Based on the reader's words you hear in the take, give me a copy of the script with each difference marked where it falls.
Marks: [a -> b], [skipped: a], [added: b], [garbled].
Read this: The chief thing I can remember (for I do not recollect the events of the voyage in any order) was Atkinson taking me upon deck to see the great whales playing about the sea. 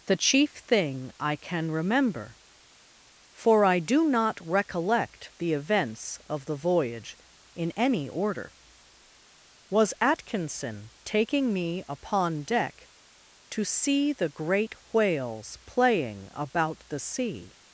The chief thing I can remember (for I do not recollect the events of the voyage in any order) was Atkinson taking me upon deck to see the great whales playing about the sea.